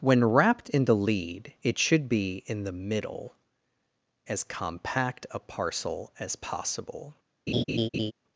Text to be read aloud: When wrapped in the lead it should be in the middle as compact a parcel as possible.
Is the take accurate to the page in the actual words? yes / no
yes